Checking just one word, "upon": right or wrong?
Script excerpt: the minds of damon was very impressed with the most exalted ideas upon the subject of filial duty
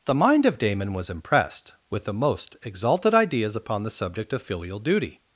right